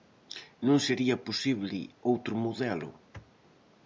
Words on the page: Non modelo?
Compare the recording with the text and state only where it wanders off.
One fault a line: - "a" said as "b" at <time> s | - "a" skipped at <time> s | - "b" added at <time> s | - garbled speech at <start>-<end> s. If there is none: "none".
- "sería posible outro" added at 0.9 s